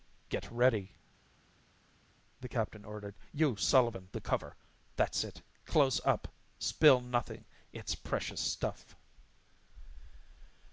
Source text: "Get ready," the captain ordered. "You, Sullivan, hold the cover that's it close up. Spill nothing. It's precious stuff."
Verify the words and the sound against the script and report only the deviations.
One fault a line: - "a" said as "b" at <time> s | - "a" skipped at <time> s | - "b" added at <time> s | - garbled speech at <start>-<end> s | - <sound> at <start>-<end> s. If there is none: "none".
- "hold" skipped at 4.1 s